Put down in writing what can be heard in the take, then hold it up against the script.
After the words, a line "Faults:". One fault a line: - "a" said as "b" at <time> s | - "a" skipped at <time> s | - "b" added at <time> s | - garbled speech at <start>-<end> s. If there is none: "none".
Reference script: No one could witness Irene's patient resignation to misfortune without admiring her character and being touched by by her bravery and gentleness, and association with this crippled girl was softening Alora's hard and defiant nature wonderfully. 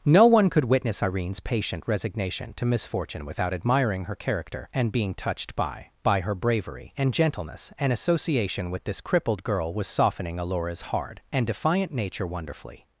No one could witness Irene's patient resignation to misfortune without admiring her character and being touched by by her bravery and gentleness, and association with this crippled girl was softening Alora's hard and defiant nature wonderfully.
Faults:
none